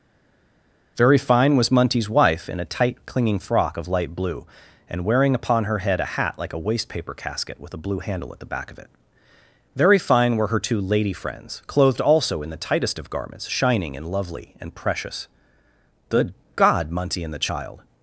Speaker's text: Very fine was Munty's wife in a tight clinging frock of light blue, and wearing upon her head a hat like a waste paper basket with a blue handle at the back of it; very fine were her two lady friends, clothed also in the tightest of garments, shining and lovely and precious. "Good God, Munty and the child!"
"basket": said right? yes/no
no